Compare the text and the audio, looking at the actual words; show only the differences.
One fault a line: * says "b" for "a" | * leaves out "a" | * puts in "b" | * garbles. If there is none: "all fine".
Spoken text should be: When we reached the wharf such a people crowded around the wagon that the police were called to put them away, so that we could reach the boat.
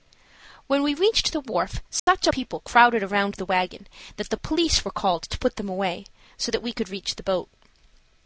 all fine